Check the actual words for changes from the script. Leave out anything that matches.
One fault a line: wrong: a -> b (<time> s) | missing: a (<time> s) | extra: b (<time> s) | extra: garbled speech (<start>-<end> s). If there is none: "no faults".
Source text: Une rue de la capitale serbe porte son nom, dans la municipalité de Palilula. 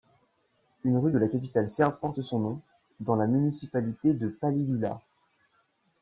no faults